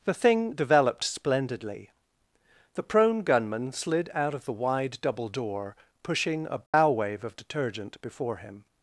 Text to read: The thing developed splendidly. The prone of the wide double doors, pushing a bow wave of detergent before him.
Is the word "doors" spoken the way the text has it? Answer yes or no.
no